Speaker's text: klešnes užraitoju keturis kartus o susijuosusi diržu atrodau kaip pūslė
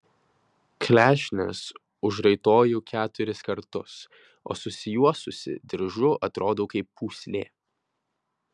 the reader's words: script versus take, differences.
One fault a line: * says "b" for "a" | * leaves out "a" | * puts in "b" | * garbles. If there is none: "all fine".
all fine